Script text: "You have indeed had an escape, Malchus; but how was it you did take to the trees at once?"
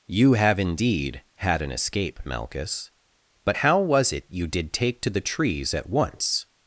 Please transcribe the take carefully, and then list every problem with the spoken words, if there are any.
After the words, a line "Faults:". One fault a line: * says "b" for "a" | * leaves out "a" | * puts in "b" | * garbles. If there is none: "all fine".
"You have indeed had an escape, Malchus; but how was it you did take to the trees at once?"
Faults:
all fine